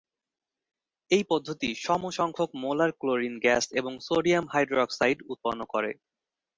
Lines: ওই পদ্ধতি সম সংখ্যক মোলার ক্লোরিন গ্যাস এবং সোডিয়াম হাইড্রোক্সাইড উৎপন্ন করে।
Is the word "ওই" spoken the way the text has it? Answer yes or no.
no